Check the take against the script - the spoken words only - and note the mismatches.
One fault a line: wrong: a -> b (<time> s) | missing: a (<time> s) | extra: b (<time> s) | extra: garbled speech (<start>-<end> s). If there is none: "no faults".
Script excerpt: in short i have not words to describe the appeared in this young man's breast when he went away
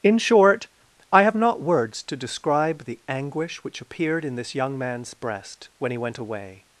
extra: anguish which (3.1 s)